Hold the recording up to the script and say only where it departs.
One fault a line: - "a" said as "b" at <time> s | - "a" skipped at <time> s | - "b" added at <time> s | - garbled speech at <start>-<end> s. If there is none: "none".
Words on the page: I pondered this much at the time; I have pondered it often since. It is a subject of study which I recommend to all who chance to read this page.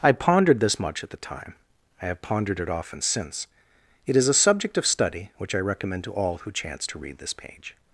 none